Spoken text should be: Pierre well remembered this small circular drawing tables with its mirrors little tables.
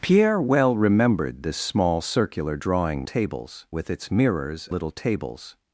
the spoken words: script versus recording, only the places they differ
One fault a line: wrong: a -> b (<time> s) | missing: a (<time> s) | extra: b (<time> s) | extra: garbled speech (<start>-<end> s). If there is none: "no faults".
no faults